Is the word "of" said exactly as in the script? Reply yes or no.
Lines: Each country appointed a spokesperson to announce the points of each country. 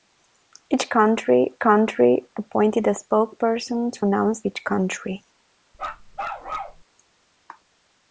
no